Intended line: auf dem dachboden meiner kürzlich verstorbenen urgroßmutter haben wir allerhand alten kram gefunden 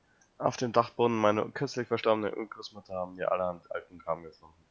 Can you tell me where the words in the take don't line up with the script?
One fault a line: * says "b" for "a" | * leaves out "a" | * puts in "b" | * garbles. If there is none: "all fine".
all fine